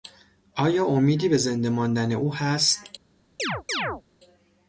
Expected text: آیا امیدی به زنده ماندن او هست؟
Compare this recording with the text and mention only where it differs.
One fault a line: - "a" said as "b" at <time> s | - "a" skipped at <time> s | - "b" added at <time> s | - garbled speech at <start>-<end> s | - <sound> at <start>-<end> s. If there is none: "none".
- chirp at 3.4-4.0 s